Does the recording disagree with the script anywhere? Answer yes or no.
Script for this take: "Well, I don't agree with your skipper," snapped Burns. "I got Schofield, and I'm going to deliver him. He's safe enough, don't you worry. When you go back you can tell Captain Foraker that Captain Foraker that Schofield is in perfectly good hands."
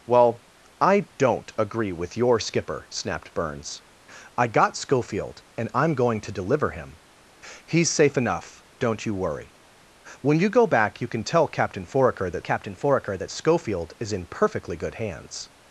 no